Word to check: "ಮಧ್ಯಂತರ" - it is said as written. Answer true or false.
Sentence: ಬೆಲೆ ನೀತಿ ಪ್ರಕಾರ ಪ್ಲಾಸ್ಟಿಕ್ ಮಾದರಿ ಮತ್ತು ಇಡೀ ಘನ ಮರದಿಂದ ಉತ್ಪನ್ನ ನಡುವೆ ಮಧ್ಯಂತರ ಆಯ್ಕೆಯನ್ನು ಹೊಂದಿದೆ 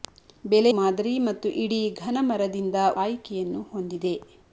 false